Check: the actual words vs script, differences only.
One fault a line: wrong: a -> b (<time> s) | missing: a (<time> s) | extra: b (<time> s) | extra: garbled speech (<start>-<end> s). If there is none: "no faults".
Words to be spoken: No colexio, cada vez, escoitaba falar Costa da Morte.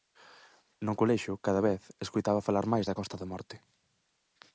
extra: máis da (2.7 s)